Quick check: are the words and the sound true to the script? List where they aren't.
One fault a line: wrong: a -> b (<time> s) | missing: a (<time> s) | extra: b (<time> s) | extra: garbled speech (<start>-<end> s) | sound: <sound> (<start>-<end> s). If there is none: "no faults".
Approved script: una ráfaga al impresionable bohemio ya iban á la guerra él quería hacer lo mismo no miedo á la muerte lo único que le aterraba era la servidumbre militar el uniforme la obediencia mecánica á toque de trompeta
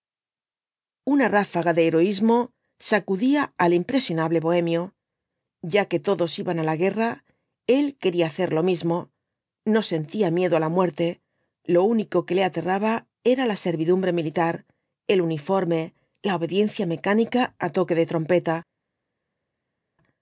extra: de heroísmo sacudía (1.7 s)
extra: que todos (5.9 s)
extra: sentía (9.9 s)